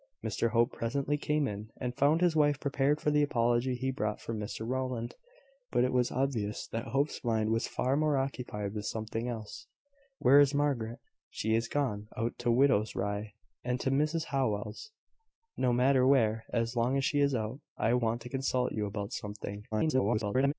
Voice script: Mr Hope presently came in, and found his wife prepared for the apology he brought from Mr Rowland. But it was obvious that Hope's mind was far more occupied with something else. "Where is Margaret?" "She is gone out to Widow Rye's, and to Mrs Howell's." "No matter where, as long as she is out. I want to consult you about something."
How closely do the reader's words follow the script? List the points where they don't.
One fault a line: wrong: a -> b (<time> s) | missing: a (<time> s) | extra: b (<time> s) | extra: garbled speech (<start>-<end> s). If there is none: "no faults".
extra: garbled speech (19.7-20.5 s)